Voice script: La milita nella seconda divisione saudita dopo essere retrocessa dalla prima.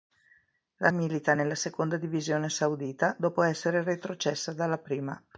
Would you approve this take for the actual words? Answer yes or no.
yes